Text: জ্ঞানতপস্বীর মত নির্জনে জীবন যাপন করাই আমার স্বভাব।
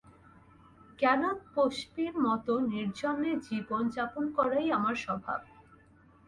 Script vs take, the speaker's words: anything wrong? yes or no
no